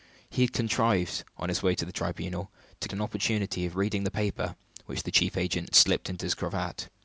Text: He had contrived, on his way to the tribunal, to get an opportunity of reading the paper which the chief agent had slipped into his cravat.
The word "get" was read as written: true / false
false